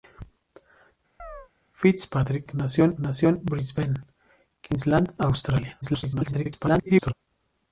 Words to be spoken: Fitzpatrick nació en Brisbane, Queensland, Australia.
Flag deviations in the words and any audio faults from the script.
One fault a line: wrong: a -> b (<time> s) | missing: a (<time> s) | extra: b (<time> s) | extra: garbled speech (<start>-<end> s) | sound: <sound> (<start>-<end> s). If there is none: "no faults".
sound: chirp (1.2-1.5 s)
extra: nació en (3.0 s)
extra: garbled speech (5.8-7.1 s)